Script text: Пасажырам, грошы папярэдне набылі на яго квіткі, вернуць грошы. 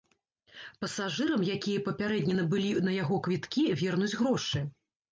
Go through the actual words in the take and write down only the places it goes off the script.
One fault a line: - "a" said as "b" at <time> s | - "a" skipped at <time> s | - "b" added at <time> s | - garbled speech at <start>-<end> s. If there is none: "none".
- "грошы" said as "якія" at 1.6 s